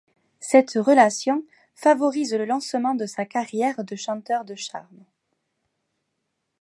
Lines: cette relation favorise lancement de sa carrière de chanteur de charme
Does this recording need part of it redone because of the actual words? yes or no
yes